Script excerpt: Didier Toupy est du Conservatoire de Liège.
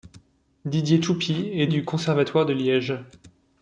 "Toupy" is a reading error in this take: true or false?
false